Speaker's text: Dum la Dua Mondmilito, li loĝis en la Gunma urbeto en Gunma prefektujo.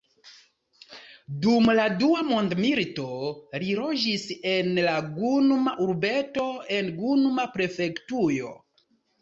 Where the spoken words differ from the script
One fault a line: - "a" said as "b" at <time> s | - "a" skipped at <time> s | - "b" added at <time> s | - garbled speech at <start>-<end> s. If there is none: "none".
none